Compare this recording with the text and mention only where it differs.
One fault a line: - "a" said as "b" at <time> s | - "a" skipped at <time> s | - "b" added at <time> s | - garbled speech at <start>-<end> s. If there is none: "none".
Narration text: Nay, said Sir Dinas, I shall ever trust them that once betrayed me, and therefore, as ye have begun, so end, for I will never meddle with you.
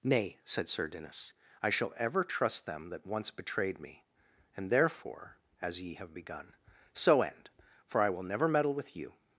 none